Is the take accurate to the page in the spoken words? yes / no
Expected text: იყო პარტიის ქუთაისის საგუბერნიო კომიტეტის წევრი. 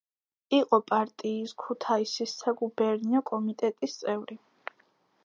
yes